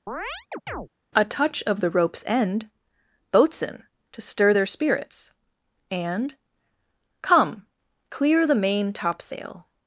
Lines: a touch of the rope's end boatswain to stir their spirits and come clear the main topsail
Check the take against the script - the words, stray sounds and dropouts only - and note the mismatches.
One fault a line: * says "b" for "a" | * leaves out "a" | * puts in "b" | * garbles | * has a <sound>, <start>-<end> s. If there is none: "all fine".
* has a chirp, 0.1-0.9 s